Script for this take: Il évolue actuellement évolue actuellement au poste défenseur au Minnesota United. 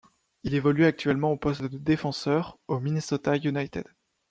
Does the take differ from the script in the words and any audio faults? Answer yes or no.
yes